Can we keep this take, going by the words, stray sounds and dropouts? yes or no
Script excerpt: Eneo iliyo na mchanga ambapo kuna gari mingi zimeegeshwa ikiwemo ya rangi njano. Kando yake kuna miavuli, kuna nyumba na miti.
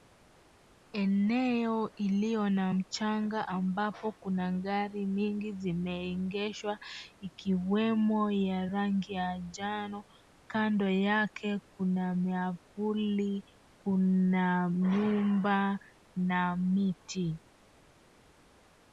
no